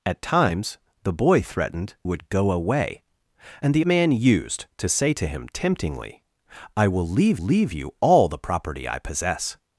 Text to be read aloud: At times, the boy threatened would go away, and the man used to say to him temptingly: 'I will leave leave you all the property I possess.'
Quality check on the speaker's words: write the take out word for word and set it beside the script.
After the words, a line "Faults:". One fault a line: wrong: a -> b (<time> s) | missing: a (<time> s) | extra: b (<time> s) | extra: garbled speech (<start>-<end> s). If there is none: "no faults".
At times, the boy threatened would go away, and the man used to say to him temptingly: 'I will leave leave you all the property I possess.'
Faults:
no faults